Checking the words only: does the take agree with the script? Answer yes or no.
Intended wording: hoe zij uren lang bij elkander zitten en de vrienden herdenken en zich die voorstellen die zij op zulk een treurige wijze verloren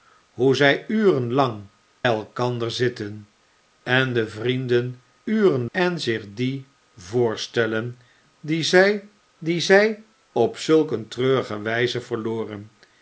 no